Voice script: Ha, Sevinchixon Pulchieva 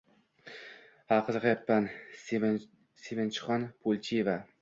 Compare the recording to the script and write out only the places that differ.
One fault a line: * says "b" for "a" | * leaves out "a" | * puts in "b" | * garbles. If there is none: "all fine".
* puts in "qiziqayapman"